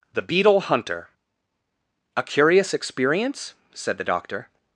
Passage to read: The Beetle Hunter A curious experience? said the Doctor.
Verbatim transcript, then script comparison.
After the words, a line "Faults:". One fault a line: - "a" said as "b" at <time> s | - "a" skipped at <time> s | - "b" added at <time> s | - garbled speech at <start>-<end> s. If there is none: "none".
The Beetle Hunter A curious experience? said the Doctor.
Faults:
none